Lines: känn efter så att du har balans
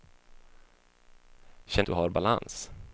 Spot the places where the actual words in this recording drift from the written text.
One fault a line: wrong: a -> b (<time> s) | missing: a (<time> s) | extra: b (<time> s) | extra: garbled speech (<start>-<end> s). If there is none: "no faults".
missing: efter så att (1.9 s)